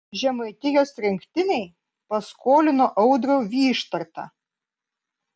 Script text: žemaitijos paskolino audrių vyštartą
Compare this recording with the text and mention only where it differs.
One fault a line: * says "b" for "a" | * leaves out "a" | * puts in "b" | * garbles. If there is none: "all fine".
* puts in "rinktinei"